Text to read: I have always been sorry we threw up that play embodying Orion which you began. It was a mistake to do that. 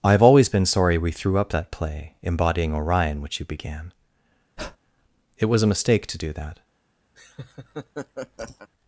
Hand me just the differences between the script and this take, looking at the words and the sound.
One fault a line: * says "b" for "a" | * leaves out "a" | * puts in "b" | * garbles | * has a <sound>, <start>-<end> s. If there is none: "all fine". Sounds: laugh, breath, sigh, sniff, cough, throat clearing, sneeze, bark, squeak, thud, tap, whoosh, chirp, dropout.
* has a breath, 4.6-4.8 s
* has a laugh, 7.1-8.7 s